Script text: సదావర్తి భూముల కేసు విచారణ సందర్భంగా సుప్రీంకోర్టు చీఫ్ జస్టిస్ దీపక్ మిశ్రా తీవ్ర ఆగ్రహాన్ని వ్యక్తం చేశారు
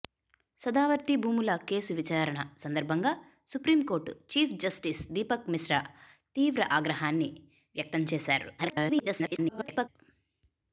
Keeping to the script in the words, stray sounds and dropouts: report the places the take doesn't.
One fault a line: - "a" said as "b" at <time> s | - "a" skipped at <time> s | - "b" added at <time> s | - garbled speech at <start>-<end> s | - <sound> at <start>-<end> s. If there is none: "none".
- garbled speech at 8.6-9.9 s